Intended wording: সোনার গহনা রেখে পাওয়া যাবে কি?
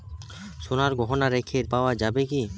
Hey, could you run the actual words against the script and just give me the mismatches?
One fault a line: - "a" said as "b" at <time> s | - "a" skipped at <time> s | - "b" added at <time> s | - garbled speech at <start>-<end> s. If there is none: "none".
none